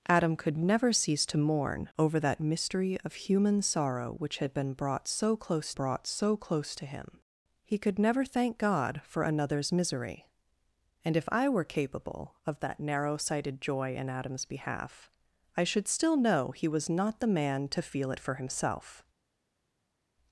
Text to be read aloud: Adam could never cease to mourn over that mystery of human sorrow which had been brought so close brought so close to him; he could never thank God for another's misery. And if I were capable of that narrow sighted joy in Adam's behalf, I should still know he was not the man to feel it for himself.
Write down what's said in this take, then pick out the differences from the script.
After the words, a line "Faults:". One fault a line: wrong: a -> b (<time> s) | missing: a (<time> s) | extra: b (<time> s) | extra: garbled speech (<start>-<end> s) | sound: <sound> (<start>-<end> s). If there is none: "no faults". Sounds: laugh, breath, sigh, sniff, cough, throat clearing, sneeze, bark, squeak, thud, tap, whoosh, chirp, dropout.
Adam could never cease to mourn over that mystery of human sorrow which had been brought so close brought so close to him; he could never thank God for another's misery. And if I were capable of that narrow sighted joy in Adam's behalf, I should still know he was not the man to feel it for himself.
Faults:
no faults